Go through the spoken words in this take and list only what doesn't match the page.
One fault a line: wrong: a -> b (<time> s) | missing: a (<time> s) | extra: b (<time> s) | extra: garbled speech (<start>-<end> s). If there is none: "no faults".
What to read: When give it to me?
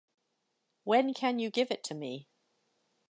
extra: can you (1.1 s)